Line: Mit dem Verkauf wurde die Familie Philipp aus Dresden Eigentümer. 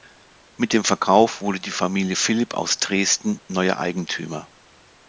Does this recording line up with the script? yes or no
no